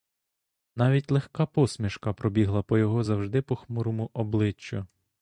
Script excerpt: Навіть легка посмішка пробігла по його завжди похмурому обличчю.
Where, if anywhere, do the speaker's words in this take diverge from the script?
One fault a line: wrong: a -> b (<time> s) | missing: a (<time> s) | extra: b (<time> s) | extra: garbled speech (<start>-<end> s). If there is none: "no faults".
no faults